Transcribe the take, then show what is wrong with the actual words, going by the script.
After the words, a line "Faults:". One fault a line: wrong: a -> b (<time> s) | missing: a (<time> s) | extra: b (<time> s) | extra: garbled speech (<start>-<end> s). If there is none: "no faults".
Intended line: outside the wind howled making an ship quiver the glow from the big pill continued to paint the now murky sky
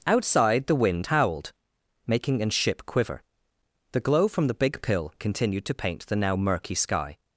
outside the wind howled making an ship quiver the glow from the big pill continued to paint the now murky sky
Faults:
no faults